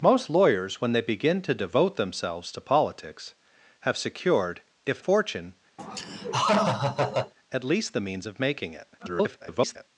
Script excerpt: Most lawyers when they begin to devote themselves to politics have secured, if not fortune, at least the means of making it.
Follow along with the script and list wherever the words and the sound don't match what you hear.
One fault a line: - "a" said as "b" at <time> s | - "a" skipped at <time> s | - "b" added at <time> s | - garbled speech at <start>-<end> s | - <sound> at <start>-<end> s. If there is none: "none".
- "not" skipped at 5.0 s
- laugh at 5.8-7.3 s
- garbled speech at 9.0-9.9 s